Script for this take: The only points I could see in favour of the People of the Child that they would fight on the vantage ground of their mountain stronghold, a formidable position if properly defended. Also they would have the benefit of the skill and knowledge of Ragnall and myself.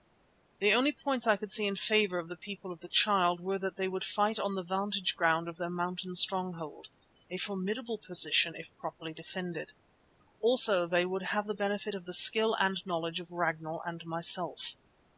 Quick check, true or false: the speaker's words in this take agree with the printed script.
false